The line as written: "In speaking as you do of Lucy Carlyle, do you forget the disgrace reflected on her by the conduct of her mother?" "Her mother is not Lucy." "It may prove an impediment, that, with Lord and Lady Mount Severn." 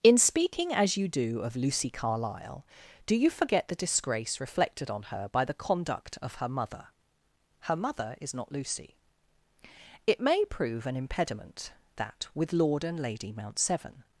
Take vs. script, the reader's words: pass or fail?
pass